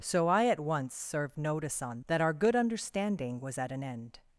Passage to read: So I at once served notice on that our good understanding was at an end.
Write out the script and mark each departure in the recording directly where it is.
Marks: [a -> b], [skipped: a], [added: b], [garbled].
So I at once served notice on that our good understanding was at an end.